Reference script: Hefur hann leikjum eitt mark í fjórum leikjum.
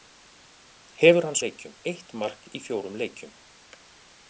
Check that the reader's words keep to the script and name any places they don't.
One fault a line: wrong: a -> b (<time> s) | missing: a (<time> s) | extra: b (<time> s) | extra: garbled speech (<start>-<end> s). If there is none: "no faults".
no faults